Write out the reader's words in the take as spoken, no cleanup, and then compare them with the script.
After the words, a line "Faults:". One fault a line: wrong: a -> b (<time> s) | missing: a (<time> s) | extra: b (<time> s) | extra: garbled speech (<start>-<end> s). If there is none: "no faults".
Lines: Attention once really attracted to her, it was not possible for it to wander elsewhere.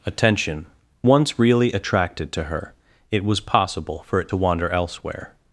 Attention once really attracted to her, it was possible for it to wander elsewhere.
Faults:
missing: not (3.4 s)